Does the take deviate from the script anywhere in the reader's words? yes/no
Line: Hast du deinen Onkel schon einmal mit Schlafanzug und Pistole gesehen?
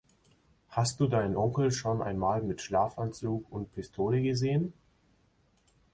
no